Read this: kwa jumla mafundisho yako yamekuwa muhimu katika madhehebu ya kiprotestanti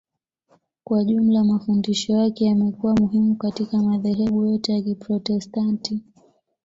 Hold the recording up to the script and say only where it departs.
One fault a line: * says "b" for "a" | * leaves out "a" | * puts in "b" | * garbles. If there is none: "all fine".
* says "yake" for "yako"
* puts in "yote"